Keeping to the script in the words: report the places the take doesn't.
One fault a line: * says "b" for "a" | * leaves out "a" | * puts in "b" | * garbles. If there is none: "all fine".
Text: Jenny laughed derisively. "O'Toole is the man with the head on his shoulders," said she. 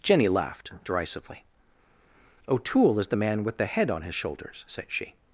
all fine